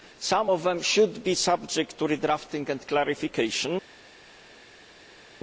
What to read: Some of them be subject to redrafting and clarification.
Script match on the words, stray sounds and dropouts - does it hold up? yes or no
no